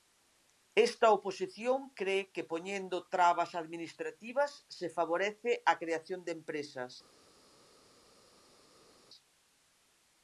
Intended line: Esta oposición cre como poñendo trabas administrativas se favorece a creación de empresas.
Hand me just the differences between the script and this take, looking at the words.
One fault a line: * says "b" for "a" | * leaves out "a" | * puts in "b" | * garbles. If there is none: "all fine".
* says "que" for "como"